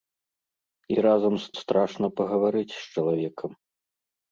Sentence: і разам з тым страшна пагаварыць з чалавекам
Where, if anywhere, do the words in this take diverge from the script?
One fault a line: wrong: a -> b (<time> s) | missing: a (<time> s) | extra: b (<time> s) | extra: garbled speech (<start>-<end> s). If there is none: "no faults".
missing: тым (1.5 s)